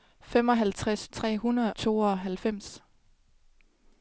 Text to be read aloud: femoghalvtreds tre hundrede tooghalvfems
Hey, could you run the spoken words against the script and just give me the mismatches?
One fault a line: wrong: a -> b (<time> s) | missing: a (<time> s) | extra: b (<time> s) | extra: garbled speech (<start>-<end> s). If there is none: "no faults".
no faults